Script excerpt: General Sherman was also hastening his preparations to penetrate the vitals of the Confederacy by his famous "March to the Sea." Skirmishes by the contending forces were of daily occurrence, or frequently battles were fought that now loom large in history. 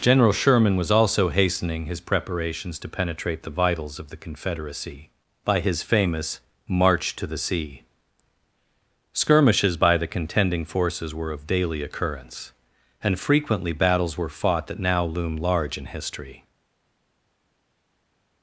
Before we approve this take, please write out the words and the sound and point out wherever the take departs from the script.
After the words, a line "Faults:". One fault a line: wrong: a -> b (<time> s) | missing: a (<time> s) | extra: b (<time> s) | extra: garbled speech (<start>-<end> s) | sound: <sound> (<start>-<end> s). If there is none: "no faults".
General Sherman was also hastening his preparations to penetrate the vitals of the Confederacy by his famous "March to the Sea." Skirmishes by the contending forces were of daily occurrence, and frequently battles were fought that now loom large in history.
Faults:
wrong: or -> and (13.0 s)